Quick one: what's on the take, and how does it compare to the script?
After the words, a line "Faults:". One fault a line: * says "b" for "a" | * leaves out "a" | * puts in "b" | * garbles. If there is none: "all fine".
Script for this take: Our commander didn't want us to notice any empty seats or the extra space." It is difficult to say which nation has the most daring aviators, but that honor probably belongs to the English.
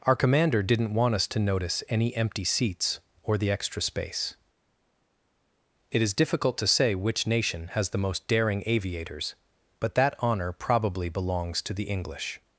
Our commander didn't want us to notice any empty seats or the extra space." It is difficult to say which nation has the most daring aviators, but that honor probably belongs to the English.
Faults:
all fine